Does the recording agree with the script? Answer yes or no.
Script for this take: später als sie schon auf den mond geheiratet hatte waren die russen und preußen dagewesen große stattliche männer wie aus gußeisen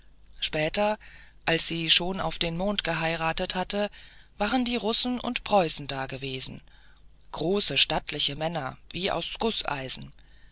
yes